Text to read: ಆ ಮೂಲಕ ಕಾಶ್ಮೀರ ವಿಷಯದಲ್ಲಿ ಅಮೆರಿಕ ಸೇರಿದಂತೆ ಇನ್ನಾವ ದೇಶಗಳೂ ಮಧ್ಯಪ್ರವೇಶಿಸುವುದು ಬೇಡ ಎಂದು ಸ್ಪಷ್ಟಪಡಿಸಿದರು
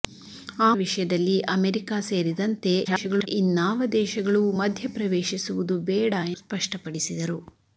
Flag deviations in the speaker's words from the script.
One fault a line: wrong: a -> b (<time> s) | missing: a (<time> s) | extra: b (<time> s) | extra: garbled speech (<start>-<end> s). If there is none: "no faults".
missing: ಮೂಲಕ ಕಾಶ್ಮೀರ (0.7 s)
extra: garbled speech (2.8-3.3 s)
missing: ಎಂದು (6.1 s)